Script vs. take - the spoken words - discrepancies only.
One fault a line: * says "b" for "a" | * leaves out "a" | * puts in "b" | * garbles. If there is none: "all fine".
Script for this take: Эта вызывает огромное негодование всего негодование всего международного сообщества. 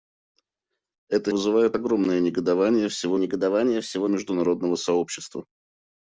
all fine